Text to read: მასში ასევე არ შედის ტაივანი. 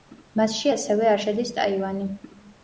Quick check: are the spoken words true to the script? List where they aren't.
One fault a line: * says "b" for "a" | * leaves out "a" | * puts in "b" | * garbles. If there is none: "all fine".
all fine